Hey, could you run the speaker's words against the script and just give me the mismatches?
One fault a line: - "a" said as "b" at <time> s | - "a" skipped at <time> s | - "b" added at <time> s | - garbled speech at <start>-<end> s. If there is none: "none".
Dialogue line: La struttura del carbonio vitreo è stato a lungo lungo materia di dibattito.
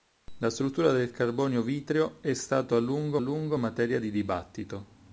none